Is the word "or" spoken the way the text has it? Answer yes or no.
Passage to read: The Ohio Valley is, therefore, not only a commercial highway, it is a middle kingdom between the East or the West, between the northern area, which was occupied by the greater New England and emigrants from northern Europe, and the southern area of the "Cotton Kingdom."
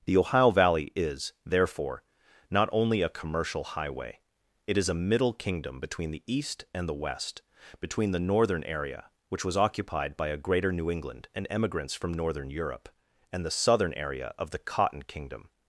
no